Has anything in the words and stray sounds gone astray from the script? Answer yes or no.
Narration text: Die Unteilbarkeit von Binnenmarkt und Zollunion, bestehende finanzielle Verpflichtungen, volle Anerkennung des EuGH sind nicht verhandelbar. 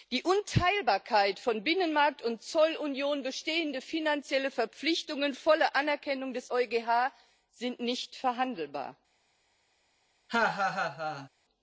yes